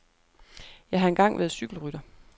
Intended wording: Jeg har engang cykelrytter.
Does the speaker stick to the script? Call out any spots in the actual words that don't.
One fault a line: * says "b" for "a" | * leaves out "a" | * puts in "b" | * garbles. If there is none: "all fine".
* puts in "været"